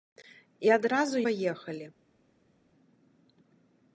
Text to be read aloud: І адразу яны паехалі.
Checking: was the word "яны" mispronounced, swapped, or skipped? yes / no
yes